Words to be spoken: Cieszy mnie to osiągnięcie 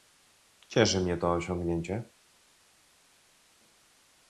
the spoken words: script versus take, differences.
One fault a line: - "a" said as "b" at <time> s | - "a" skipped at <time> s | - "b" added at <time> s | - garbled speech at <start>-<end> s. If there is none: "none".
none